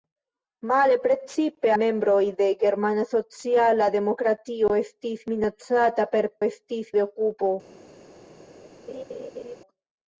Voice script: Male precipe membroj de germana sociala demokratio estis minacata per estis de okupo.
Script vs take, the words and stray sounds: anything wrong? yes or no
yes